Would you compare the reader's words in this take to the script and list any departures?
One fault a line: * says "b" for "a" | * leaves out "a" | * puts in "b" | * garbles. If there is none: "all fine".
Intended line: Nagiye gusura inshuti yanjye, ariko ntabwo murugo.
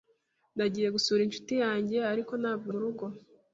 all fine